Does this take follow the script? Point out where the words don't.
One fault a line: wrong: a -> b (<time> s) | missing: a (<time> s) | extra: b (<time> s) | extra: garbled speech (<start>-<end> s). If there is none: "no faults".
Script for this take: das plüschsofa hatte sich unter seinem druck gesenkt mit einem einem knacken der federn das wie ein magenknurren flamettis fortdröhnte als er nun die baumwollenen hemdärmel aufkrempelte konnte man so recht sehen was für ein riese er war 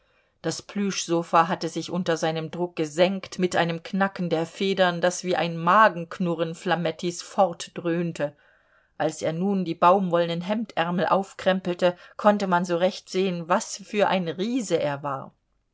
missing: einem (3.8 s)